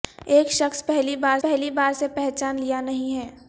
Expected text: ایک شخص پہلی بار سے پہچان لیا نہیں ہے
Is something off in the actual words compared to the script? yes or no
yes